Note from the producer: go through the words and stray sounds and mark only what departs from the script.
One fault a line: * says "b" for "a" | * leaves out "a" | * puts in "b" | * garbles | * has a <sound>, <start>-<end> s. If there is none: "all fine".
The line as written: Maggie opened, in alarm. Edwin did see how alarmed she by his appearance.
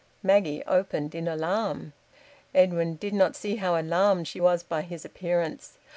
* puts in "not"
* puts in "was"